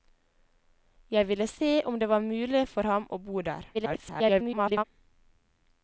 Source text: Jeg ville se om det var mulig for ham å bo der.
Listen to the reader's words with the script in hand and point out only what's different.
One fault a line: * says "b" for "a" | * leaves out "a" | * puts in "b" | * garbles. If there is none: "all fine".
* garbles